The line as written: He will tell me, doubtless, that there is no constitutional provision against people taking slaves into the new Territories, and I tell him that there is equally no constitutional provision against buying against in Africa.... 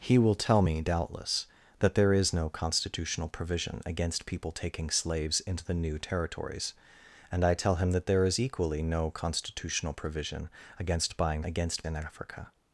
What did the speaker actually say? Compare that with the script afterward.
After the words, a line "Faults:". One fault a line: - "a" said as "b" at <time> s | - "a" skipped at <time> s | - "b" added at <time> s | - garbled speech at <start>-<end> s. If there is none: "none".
He will tell me, doubtless, that there is no constitutional provision against people taking slaves into the new Territories, and I tell him that there is equally no constitutional provision against buying against in Africa....
Faults:
none